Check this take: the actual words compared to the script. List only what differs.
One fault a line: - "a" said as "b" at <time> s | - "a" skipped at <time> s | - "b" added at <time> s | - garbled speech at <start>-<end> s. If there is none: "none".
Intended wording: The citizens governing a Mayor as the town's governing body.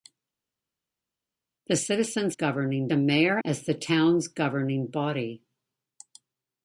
none